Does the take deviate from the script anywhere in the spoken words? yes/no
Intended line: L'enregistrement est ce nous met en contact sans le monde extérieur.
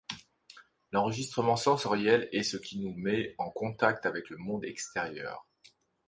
yes